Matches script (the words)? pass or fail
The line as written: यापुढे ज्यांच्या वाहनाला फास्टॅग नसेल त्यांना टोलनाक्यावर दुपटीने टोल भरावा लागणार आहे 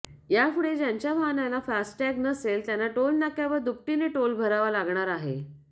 pass